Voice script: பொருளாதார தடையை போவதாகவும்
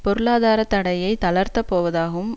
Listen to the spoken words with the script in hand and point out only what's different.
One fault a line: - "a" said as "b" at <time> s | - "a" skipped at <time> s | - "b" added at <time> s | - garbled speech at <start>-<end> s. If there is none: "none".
- "தளர்த்தப்" added at 1.3 s